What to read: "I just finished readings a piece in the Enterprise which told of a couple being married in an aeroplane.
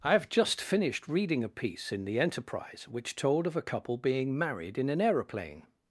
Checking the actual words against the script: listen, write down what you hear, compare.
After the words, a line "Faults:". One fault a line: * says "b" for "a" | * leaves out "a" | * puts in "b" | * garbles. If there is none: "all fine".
"I have just finished reading a piece in the Enterprise which told of a couple being married in an aeroplane.
Faults:
* puts in "have"
* says "reading" for "readings"